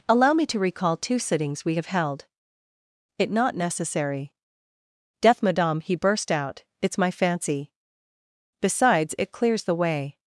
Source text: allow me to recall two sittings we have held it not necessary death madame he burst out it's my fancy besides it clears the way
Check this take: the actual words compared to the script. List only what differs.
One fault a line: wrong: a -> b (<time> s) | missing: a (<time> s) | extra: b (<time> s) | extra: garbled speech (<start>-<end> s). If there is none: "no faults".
no faults